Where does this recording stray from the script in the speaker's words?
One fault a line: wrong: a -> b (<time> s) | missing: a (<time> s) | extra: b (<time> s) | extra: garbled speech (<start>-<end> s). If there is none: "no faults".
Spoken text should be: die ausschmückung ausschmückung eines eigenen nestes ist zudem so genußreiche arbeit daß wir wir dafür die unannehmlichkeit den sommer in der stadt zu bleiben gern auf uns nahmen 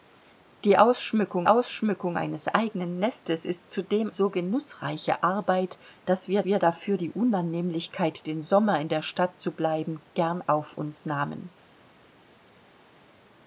no faults